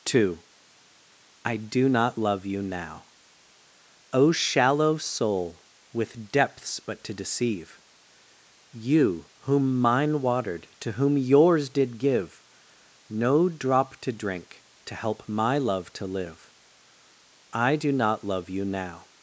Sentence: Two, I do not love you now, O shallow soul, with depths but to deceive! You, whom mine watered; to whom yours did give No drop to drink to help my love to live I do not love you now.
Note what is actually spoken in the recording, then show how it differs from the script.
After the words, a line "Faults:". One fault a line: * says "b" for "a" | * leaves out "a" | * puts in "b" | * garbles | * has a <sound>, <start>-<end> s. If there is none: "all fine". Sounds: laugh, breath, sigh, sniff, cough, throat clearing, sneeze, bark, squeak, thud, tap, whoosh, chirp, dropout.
Two, I do not love you now, O shallow soul, with depths but to deceive! You, whom mine watered; to whom yours did give No drop to drink to help my love to live I do not love you now.
Faults:
all fine